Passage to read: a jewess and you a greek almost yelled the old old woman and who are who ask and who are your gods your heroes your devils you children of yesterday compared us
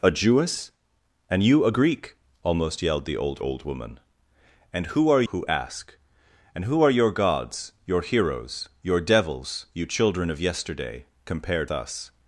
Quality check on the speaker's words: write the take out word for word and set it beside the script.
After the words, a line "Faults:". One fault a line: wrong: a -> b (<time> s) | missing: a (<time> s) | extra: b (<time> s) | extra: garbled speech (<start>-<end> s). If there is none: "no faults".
a jewess and you a greek almost yelled the old old woman and who are who ask and who are your gods your heroes your devils you children of yesterday compared us
Faults:
no faults